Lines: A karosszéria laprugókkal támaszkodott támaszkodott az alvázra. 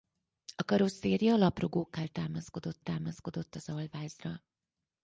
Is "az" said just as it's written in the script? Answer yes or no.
yes